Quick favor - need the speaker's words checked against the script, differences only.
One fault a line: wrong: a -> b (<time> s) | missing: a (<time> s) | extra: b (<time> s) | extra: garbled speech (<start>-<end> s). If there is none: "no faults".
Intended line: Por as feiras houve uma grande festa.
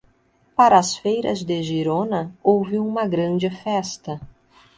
wrong: Por -> Para (0.6 s)
extra: de Girona (1.4 s)